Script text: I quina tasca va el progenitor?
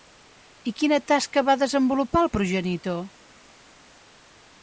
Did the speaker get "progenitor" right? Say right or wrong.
right